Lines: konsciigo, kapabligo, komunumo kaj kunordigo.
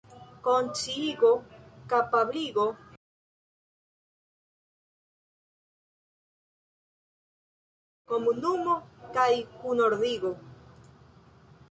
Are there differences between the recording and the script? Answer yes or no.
no